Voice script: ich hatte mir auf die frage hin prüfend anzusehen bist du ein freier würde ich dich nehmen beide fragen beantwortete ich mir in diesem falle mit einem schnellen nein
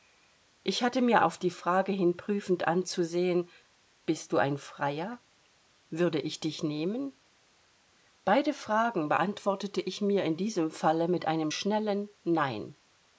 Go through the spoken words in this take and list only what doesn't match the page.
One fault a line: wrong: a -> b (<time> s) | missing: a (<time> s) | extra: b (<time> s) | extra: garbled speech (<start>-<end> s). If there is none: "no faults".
no faults